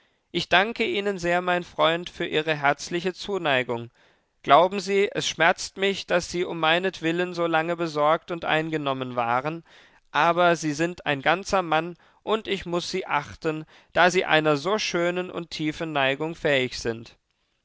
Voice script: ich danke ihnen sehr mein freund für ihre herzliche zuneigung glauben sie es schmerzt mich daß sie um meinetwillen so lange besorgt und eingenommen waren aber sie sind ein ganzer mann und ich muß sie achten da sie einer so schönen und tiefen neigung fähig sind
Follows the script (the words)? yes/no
yes